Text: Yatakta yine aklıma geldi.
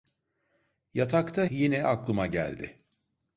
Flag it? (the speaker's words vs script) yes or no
no